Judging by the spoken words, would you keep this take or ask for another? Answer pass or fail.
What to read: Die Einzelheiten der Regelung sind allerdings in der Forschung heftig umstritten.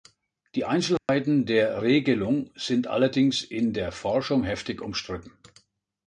pass